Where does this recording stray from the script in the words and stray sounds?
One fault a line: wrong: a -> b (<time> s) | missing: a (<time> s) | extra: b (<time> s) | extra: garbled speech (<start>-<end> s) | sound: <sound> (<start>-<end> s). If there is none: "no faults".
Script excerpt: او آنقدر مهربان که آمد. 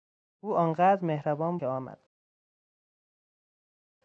no faults